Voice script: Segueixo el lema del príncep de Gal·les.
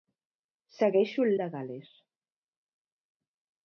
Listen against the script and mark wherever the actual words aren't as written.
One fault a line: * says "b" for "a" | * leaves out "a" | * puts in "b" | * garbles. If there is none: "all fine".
* leaves out "lema del príncep"